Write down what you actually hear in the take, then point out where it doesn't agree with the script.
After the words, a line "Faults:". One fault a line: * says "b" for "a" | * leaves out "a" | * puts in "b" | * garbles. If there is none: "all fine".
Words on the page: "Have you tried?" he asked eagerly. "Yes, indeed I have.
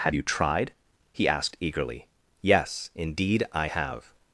"Have you tried?" he asked eagerly. "Yes, indeed I have.
Faults:
all fine